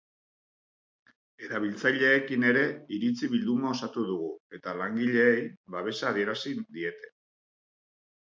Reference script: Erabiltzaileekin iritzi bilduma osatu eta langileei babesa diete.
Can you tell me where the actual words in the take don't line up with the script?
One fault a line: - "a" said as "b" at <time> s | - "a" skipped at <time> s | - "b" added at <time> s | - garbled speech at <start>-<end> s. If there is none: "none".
- "ere" added at 2.5 s
- "dugu" added at 4.1 s
- "adierazi" added at 6.1 s